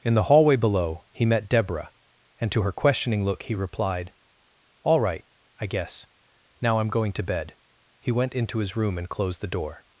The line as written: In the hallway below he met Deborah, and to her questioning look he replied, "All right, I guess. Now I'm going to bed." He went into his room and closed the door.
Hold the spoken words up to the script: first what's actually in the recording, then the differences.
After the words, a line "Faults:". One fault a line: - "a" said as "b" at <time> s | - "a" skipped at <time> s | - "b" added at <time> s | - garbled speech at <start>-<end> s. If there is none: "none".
In the hallway below he met Deborah, and to her questioning look he replied, "All right, I guess. Now I'm going to bed." He went into his room and closed the door.
Faults:
none